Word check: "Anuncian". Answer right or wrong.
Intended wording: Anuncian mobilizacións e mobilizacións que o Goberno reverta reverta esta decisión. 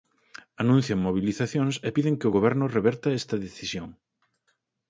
right